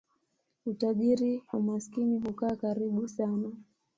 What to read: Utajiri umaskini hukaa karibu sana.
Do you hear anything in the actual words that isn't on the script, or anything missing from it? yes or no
no